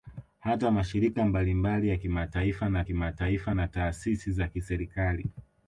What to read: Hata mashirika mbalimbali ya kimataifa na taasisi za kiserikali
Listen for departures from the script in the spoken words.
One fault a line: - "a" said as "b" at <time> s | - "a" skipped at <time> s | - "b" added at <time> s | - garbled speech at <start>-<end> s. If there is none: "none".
- "kimataifa na" added at 2.8 s